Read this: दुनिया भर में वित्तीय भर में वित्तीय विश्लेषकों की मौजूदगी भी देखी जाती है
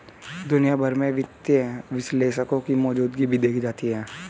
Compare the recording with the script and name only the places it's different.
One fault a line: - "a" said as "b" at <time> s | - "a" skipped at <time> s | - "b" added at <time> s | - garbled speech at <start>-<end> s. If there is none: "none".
- "भर में वित्तीय" skipped at 1.6 s